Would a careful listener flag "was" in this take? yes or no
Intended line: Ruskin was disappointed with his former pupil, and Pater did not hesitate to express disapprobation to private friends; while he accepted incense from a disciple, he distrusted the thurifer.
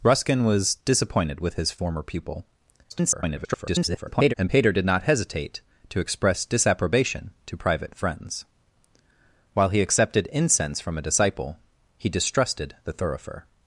no